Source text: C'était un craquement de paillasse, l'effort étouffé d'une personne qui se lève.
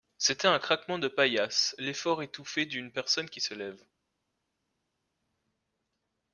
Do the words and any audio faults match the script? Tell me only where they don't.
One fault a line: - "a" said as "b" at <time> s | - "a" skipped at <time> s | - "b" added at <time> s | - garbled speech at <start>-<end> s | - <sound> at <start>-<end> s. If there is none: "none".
none